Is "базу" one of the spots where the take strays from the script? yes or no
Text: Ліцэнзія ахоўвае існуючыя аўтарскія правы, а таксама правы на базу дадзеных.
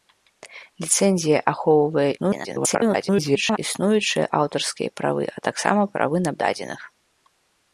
yes